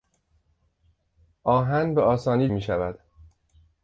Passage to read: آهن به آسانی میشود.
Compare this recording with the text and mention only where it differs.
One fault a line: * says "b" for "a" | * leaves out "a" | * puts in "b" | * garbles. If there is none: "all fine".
all fine